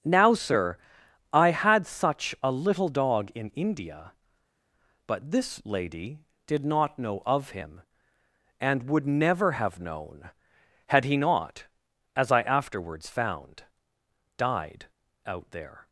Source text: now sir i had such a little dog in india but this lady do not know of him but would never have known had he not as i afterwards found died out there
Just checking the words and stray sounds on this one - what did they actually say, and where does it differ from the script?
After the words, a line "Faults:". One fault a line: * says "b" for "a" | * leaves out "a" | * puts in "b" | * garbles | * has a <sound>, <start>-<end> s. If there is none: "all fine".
now sir i had such a little dog in india but this lady did not know of him and would never have known had he not as i afterwards found died out there
Faults:
* says "did" for "do"
* says "and" for "but"